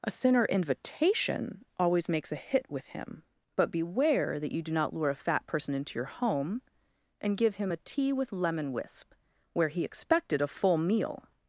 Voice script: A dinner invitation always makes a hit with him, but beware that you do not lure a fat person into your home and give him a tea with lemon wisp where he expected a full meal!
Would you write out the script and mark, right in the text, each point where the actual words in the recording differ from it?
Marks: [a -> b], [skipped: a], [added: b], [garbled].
A [dinner -> sinner] invitation always makes a hit with him, but beware that you do not lure a fat person into your home and give him a tea with lemon wisp where he expected a full meal!